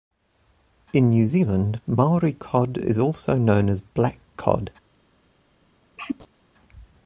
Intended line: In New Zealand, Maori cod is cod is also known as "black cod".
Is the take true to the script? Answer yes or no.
no